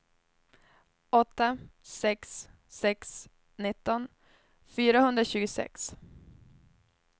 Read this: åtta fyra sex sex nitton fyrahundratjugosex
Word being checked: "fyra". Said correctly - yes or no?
no